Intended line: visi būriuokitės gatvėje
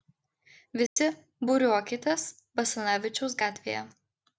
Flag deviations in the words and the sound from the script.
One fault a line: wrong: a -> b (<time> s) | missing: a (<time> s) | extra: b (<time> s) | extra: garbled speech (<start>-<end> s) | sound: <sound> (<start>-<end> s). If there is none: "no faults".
sound: dropout (0.9-1.0 s)
extra: basanavičiaus (2.6 s)